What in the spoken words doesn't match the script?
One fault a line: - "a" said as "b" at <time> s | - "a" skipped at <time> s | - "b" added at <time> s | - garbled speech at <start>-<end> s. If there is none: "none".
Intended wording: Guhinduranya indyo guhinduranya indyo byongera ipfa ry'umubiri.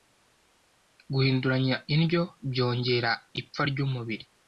- "guhinduranya indyo" skipped at 2.2 s